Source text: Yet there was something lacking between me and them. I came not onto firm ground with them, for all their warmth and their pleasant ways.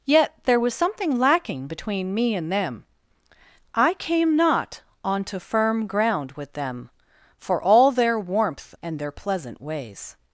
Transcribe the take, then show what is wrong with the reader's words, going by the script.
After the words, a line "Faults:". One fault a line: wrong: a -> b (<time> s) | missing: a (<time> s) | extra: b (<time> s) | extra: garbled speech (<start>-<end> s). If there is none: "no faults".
Yet there was something lacking between me and them. I came not onto firm ground with them, for all their warmth and their pleasant ways.
Faults:
no faults